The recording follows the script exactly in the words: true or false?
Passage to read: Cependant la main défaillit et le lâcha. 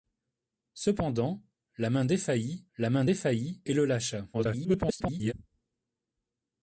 false